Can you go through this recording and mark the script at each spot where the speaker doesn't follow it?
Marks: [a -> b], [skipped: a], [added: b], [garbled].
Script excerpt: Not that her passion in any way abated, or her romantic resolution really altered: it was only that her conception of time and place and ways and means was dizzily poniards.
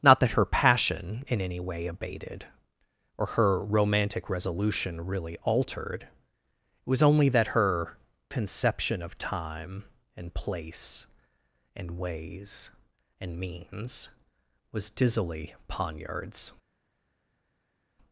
Not that her passion in any way abated, or her romantic resolution really altered: it was only that her conception of time and place and ways and means was dizzily poniards.